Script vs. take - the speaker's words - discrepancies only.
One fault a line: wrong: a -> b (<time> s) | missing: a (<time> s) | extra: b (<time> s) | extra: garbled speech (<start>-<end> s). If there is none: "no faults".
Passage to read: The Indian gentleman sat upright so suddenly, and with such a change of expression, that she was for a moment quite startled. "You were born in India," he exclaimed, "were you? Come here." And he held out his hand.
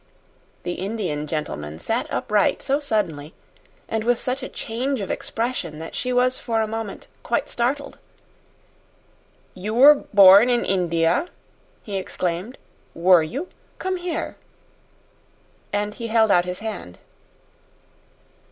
no faults